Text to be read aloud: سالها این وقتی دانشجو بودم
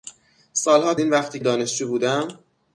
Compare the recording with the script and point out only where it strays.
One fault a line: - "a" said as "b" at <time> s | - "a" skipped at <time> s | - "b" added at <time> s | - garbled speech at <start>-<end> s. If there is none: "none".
none